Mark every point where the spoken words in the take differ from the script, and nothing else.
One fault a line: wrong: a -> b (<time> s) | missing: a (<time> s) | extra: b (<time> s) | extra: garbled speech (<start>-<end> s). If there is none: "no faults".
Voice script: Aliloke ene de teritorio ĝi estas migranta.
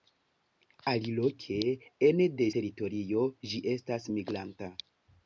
no faults